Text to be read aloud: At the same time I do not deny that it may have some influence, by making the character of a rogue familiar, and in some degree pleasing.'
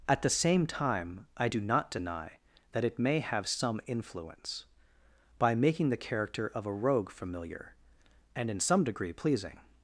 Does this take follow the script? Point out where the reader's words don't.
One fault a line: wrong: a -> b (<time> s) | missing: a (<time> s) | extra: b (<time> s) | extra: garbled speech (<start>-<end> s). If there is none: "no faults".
no faults